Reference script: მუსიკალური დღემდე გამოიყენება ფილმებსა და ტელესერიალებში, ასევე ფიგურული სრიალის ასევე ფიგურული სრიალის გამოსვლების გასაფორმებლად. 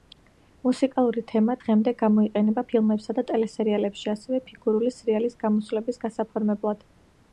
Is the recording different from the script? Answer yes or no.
yes